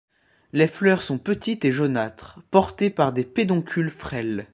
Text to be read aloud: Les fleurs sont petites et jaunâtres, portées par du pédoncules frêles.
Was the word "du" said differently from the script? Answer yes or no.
yes